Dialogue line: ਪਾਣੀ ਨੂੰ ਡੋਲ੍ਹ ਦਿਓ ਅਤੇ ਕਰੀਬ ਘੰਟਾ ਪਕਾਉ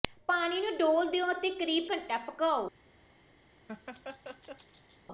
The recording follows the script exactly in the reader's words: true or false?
true